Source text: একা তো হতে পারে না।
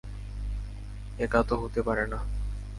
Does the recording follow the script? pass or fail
pass